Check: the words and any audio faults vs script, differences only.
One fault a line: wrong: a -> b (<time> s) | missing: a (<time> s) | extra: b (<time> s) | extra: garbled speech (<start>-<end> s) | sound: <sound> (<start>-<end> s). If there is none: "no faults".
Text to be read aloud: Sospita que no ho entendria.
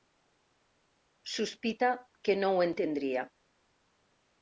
no faults